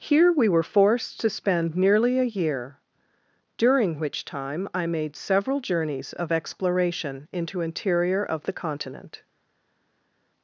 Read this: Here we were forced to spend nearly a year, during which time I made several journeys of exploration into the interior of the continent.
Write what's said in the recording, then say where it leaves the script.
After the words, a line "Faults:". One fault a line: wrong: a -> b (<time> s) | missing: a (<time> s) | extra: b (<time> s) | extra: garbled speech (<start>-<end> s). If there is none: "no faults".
Here we were forced to spend nearly a year, during which time I made several journeys of exploration into interior of the continent.
Faults:
missing: the (7.6 s)